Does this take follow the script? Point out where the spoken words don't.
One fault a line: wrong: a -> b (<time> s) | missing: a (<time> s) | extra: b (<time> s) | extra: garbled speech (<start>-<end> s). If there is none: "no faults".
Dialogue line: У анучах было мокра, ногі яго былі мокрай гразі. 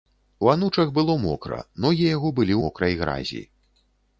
no faults